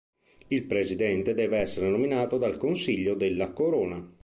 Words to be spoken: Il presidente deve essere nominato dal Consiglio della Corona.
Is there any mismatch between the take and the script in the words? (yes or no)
no